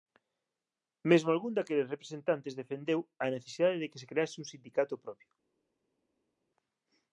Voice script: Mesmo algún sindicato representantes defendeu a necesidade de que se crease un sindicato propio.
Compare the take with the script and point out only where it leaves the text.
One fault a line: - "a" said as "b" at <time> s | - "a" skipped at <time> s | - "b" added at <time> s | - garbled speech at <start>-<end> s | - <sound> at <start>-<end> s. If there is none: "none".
- "sindicato" said as "daqueles" at 1.6 s